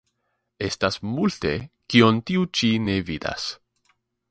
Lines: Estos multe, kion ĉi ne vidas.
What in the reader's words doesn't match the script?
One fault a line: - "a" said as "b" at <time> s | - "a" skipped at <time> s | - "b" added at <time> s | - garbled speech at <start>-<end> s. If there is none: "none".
- "Estos" said as "Estas" at 0.7 s
- "tiu" added at 2.3 s